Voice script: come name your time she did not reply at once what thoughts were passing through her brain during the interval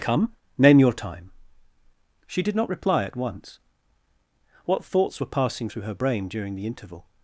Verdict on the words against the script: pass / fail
pass